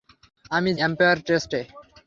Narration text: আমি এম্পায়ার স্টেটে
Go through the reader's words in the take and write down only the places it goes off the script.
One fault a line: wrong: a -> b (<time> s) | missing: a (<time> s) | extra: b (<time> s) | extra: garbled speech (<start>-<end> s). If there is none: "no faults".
no faults